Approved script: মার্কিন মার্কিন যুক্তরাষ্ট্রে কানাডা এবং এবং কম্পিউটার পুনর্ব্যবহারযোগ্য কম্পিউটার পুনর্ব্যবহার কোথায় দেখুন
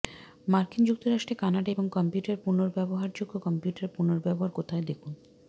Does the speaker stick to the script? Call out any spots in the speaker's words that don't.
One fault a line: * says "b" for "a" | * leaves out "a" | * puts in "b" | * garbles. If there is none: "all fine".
* leaves out "মার্কিন"
* leaves out "এবং"